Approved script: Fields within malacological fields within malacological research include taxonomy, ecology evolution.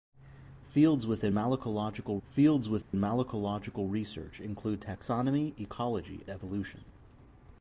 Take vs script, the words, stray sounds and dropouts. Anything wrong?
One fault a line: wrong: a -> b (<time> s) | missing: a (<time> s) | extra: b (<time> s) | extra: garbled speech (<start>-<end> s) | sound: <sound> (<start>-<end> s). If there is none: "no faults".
sound: dropout (2.8-2.9 s)